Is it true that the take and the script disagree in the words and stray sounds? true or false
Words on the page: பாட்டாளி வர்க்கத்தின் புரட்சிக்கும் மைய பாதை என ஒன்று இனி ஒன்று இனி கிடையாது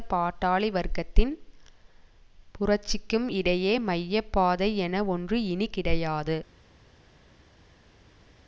true